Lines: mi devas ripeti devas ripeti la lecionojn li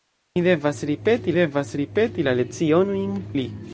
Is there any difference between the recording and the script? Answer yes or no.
no